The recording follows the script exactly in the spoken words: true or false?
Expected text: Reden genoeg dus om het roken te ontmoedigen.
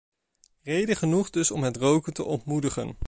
true